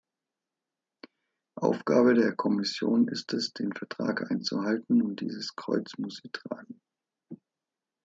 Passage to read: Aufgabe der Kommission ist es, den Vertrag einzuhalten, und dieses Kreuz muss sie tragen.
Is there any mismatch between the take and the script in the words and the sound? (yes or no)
no